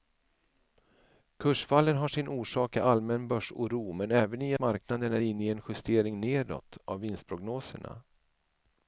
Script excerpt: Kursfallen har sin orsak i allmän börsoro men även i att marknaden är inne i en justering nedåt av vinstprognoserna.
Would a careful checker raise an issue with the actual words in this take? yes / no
yes